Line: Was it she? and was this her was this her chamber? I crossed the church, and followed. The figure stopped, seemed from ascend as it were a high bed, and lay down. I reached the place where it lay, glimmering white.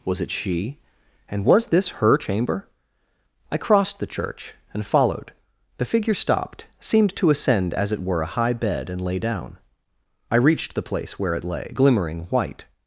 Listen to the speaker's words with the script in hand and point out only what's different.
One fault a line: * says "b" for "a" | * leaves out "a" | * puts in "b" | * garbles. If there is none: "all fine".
* leaves out "was this her"
* says "to" for "from"